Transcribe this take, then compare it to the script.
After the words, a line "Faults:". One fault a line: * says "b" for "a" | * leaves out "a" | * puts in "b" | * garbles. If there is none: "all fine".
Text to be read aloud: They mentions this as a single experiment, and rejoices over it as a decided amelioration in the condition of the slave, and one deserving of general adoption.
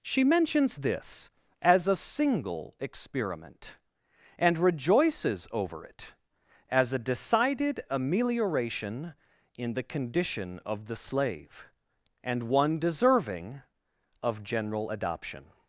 She mentions this as a single experiment, and rejoices over it as a decided amelioration in the condition of the slave, and one deserving of general adoption.
Faults:
* says "She" for "They"